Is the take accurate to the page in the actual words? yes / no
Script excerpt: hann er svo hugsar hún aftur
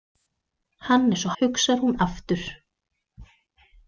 yes